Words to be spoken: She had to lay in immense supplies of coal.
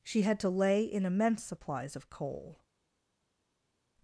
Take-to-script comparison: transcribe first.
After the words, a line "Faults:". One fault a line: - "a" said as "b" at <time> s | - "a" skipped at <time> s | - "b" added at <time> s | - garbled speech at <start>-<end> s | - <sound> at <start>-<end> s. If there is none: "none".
She had to lay in immense supplies of coal.
Faults:
none